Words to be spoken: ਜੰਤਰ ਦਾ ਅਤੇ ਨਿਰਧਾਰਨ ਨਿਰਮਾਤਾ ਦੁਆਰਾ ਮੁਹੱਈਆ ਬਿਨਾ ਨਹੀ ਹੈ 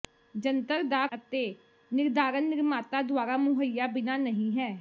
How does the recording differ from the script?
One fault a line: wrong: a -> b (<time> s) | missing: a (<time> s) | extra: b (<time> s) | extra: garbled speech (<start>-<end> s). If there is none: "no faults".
no faults